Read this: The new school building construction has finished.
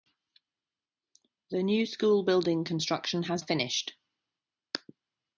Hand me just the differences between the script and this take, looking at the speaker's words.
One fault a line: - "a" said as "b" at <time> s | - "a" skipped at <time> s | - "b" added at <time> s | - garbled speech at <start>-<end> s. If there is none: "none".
none